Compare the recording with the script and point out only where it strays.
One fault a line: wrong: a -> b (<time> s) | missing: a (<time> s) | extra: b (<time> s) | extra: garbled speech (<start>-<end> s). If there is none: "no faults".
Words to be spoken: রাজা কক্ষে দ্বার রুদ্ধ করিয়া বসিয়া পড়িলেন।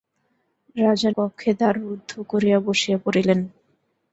no faults